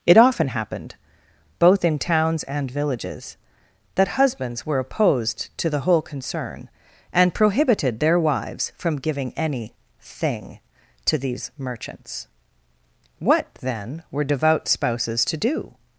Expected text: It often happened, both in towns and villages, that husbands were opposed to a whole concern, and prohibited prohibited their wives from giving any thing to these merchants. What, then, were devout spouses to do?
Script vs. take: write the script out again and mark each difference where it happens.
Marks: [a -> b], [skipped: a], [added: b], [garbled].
It often happened, both in towns and villages, that husbands were opposed to [a -> the] whole concern, and prohibited [skipped: prohibited] their wives from giving any thing to these merchants. What, then, were devout spouses to do?